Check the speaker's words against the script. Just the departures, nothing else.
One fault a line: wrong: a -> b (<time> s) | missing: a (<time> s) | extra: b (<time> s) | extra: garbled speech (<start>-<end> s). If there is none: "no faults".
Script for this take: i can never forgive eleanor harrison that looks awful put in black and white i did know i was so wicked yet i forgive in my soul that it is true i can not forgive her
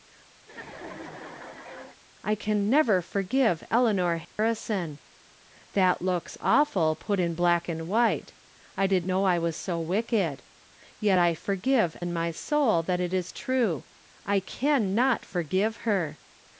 no faults